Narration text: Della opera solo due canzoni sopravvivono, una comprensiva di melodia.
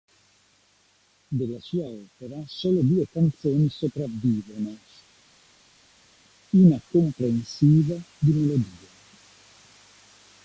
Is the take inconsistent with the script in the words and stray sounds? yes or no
yes